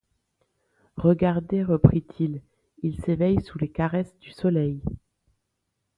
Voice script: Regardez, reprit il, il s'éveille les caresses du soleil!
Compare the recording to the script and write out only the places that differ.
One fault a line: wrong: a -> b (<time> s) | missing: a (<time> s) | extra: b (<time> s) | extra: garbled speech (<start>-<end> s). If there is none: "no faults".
extra: sous (3.4 s)